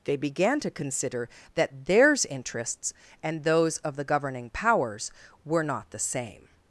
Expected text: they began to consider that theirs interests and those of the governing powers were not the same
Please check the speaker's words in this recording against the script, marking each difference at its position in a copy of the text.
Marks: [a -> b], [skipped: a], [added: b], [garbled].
they began to consider that theirs interests and those of the governing powers were not the same